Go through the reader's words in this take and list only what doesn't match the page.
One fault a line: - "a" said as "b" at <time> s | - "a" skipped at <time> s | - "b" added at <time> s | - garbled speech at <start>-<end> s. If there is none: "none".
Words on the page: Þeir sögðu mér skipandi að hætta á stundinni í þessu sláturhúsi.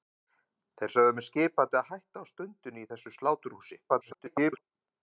- garbled speech at 3.9-4.6 s